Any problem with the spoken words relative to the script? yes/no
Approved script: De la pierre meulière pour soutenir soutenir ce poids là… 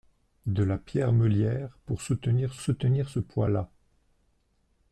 no